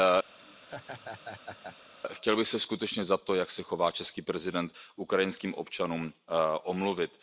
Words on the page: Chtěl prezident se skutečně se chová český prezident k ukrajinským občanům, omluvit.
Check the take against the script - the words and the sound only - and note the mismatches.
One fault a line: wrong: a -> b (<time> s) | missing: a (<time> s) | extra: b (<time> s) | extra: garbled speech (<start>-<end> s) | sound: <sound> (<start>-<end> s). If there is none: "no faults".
sound: laugh (0.4-1.8 s)
wrong: prezident -> bych (2.4 s)
extra: za to jak (3.0 s)